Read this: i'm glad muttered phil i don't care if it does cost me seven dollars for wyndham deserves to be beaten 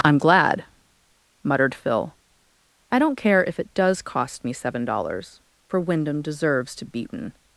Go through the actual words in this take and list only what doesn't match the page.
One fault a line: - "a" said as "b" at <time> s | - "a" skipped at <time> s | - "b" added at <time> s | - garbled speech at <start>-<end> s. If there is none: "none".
- "be" skipped at 6.8 s